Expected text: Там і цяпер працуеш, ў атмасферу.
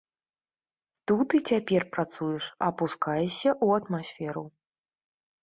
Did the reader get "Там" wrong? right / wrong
wrong